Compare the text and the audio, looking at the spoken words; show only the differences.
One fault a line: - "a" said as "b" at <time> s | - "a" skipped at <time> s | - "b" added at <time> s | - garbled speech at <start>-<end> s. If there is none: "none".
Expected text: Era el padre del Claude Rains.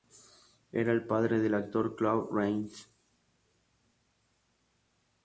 - "actor" added at 1.5 s